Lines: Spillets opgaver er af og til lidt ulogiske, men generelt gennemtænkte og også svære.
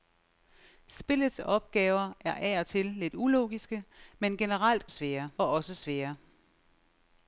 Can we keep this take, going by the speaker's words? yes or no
no